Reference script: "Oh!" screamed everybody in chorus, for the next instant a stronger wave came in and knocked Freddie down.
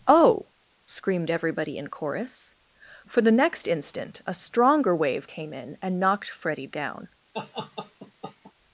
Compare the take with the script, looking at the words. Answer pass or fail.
pass